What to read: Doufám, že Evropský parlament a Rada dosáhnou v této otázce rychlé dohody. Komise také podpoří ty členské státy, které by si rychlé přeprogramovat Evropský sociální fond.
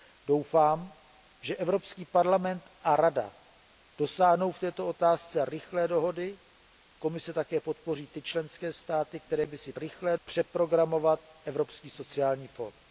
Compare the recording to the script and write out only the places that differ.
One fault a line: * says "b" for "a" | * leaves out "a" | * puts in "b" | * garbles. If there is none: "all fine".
all fine